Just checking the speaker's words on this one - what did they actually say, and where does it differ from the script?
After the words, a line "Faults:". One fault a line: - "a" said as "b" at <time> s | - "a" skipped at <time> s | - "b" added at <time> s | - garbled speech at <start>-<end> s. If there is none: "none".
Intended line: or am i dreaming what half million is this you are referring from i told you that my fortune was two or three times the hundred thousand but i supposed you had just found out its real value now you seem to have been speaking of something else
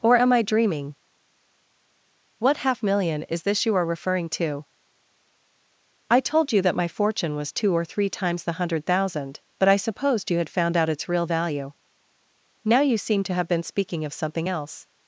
or am i dreaming what half million is this you are referring to i told you that my fortune was two or three times the hundred thousand but i supposed you had found out its real value now you seem to have been speaking of something else
Faults:
- "from" said as "to" at 4.3 s
- "just" skipped at 10.5 s